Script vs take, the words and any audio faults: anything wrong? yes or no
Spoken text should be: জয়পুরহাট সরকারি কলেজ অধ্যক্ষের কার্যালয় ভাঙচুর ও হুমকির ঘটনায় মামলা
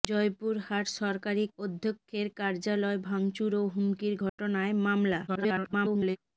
yes